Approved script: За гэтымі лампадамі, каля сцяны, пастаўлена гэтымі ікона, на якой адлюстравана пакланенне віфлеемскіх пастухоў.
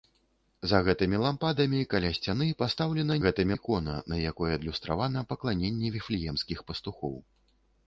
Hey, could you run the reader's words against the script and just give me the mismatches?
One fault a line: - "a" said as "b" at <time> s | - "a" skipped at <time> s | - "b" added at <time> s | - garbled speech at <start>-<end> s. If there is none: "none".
none